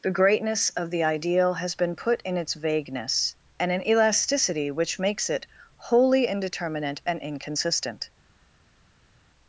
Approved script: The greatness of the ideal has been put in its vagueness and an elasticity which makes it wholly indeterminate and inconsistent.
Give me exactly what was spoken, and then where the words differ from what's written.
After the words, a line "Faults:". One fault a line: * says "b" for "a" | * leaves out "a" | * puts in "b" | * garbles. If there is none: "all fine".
The greatness of the ideal has been put in its vagueness and an elasticity which makes it wholly indeterminate and inconsistent.
Faults:
all fine